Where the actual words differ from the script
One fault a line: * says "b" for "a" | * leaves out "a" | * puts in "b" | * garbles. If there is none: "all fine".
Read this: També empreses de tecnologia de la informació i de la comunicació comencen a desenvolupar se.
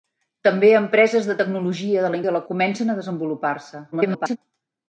* leaves out "informació"
* leaves out "comunicació"
* garbles